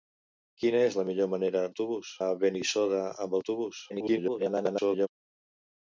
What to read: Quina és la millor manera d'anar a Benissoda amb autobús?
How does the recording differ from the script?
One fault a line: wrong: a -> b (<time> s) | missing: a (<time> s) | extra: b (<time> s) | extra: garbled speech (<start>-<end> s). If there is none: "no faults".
wrong: d'anar -> autobús (1.7 s)
extra: garbled speech (3.9-5.1 s)